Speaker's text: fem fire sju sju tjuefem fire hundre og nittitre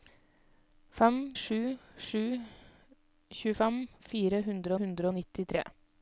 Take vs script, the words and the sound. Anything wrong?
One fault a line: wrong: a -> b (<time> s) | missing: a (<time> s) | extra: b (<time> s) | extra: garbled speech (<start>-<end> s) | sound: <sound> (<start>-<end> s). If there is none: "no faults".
missing: fire (1.2 s)
extra: hundre (4.8 s)